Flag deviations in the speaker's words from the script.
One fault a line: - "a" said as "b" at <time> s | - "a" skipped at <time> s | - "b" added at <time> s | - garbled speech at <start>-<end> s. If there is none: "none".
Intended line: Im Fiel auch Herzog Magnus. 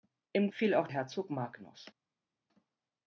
none